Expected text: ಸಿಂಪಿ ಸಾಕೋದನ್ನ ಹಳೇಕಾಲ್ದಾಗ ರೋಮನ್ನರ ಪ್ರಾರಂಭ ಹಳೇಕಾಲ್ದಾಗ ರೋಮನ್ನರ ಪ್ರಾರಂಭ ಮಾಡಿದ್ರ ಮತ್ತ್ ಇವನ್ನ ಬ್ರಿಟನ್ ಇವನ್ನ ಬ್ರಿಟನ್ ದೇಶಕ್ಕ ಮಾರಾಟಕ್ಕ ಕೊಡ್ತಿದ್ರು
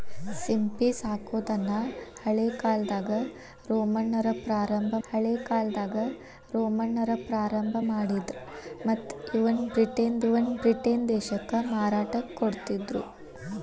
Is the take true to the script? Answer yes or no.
yes